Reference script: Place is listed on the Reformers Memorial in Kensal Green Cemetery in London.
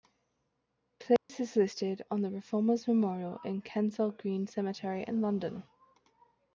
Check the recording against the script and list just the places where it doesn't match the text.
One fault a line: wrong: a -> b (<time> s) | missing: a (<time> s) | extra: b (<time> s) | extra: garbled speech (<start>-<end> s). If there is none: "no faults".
no faults